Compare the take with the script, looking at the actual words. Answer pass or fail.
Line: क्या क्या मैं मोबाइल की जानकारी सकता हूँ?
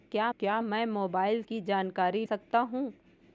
pass